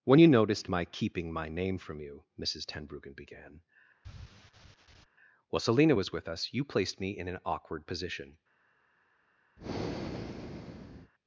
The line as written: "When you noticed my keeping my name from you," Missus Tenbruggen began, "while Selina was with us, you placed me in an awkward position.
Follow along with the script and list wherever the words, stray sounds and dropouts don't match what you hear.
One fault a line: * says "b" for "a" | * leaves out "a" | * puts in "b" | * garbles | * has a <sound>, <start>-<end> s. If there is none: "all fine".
* has a sigh, 4.0-5.1 s
* has a breath, 9.6-11.1 s